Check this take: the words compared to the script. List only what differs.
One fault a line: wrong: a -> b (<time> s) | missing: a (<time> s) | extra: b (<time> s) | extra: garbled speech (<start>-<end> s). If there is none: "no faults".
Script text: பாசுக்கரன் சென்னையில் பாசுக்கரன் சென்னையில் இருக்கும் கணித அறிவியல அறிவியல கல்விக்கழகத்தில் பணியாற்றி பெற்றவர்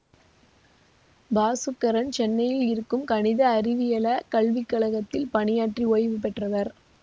missing: பாசுக்கரன் சென்னையில் (2.6 s)
missing: அறிவியல (4.1 s)
extra: ஓய்வு (5.9 s)